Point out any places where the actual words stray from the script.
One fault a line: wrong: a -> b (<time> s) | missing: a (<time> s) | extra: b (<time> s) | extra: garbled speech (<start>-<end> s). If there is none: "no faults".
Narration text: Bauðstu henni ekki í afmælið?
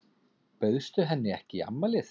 no faults